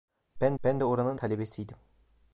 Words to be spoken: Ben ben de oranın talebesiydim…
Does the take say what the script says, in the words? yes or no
yes